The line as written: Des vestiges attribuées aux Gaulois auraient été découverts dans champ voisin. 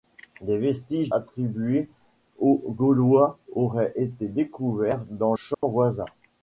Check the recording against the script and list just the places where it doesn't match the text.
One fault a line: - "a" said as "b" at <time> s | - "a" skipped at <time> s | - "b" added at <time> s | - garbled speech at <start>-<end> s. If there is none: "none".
none